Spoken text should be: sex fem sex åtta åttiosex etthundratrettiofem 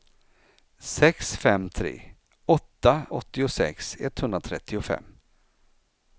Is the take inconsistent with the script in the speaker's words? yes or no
yes